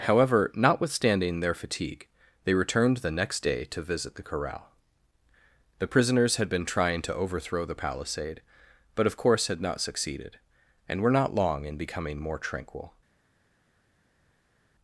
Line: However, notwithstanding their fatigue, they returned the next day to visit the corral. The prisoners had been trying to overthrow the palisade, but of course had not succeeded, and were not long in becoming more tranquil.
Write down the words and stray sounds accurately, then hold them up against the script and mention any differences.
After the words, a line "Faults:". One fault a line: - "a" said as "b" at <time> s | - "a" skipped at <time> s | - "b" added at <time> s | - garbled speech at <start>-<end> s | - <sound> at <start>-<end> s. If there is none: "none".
However, notwithstanding their fatigue, they returned the next day to visit the corral. The prisoners had been trying to overthrow the palisade, but of course had not succeeded, and were not long in becoming more tranquil.
Faults:
none